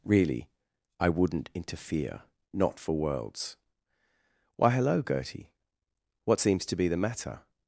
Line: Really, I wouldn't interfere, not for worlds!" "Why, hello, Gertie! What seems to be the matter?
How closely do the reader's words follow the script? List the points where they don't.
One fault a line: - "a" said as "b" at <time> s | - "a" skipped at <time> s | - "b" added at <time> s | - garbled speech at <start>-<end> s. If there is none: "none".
none